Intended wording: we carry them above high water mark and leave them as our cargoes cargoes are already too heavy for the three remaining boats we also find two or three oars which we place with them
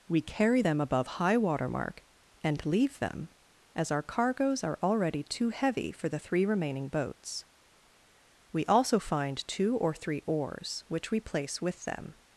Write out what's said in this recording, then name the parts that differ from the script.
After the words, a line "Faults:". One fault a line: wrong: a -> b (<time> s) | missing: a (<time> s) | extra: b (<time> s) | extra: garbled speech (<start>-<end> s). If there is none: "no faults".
we carry them above high water mark and leave them as our cargoes are already too heavy for the three remaining boats we also find two or three oars which we place with them
Faults:
missing: cargoes (4.6 s)